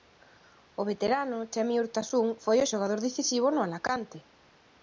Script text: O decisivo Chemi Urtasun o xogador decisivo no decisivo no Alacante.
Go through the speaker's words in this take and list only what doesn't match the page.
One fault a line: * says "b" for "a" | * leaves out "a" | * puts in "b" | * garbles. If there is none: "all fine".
* says "veterano" for "decisivo"
* puts in "foi"
* leaves out "decisivo no"